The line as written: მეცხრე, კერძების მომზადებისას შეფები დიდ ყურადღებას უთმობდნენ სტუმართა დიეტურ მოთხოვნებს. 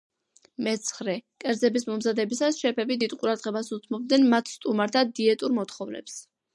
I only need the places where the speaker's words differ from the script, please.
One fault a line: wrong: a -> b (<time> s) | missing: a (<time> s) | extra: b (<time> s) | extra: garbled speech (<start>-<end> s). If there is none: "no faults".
extra: მათ (4.4 s)